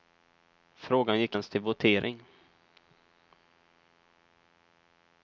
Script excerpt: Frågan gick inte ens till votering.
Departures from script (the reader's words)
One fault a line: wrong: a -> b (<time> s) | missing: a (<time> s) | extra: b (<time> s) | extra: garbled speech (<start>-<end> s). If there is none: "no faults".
missing: inte (1.4 s)